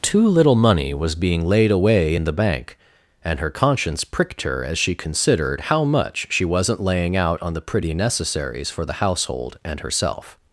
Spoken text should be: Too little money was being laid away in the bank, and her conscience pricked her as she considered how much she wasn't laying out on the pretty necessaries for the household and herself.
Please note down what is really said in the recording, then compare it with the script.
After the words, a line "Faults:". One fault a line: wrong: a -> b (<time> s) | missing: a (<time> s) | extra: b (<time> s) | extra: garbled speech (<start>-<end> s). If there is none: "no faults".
Too little money was being laid away in the bank, and her conscience pricked her as she considered how much she wasn't laying out on the pretty necessaries for the household and herself.
Faults:
no faults